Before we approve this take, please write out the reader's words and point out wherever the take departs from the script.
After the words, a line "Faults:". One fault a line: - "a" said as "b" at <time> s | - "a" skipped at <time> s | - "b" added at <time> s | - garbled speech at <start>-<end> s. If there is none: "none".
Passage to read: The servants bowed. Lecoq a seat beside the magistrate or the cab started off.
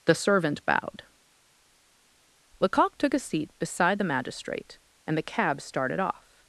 The servant bowed. Lecoq took a seat beside the magistrate and the cab started off.
Faults:
- "servants" said as "servant" at 0.1 s
- "took" added at 3.0 s
- "or" said as "and" at 5.1 s